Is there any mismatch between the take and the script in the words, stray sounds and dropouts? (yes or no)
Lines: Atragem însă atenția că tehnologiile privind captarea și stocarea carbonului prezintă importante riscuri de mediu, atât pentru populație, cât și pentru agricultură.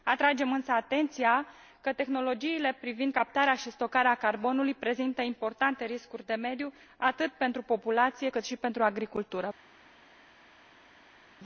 no